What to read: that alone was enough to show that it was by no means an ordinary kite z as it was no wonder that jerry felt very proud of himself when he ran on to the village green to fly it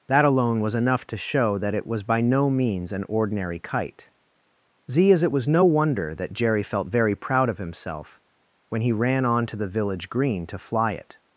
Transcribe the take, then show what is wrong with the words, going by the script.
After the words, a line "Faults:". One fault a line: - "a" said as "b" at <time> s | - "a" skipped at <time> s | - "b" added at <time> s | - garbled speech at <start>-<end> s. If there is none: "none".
that alone was enough to show that it was by no means an ordinary kite z as it was no wonder that jerry felt very proud of himself when he ran on to the village green to fly it
Faults:
none